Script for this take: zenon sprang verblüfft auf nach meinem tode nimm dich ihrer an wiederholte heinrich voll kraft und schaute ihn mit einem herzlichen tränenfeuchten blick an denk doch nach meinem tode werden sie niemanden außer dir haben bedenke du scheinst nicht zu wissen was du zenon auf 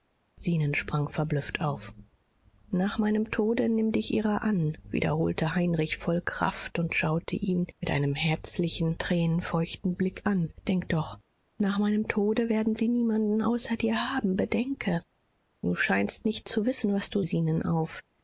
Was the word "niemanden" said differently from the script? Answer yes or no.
no